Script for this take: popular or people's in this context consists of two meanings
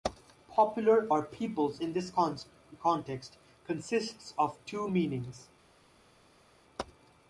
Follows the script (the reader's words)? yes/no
yes